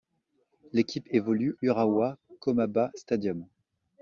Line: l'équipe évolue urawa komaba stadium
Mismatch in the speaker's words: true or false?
false